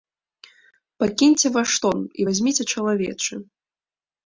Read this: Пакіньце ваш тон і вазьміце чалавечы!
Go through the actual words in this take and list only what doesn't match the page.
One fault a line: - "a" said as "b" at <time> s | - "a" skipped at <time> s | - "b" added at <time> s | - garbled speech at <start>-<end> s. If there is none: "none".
none